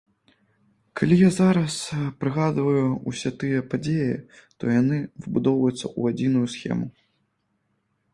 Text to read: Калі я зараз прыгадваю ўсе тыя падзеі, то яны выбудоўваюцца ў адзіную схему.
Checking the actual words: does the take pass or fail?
pass